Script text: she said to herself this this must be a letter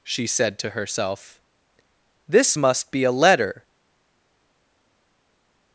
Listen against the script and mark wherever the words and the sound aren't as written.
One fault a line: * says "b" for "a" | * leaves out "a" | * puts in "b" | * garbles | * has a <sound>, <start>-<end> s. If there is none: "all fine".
* leaves out "this"